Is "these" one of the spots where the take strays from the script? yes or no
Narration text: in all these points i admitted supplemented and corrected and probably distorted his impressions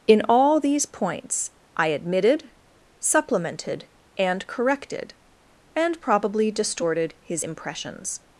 no